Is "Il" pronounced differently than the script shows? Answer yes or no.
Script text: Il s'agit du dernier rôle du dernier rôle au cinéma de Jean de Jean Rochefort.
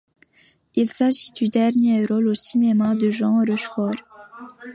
no